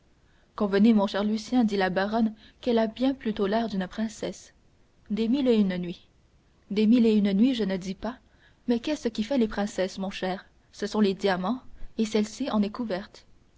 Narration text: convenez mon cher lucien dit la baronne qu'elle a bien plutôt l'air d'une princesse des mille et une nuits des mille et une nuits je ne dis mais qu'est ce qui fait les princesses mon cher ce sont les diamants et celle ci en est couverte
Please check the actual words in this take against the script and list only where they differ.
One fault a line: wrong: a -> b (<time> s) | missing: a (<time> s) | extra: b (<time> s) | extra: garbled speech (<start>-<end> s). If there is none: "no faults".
extra: pas (7.9 s)